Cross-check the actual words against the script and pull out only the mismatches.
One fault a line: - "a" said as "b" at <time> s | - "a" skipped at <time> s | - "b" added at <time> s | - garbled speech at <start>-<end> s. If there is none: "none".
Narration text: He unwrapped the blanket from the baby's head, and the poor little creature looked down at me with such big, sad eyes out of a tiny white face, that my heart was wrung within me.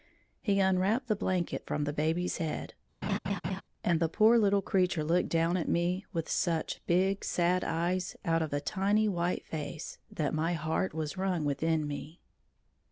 none